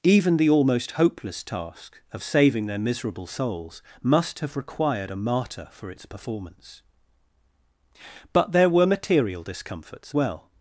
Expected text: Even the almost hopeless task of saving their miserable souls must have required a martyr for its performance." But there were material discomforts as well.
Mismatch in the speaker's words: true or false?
true